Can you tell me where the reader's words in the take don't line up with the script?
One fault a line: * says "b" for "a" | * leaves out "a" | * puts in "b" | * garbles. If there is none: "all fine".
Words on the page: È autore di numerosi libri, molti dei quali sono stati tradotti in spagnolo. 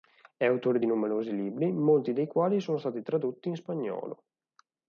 all fine